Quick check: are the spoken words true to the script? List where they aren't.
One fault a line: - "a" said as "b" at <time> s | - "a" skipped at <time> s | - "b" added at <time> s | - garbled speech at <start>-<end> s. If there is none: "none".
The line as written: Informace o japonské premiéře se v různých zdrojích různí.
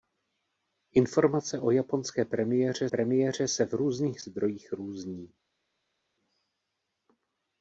- "premiéře" added at 2.9 s